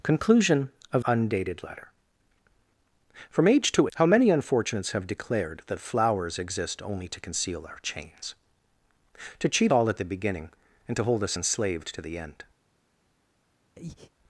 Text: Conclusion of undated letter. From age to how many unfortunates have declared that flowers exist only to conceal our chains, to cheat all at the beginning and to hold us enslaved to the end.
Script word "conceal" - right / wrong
right